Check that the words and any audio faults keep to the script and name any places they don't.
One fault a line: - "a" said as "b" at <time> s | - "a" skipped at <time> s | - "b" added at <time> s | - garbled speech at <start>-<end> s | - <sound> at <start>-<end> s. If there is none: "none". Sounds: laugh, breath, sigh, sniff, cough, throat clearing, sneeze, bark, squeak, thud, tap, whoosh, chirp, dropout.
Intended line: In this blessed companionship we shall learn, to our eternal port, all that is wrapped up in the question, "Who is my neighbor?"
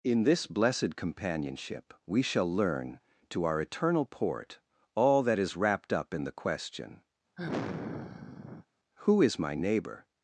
- sigh at 7.4-8.7 s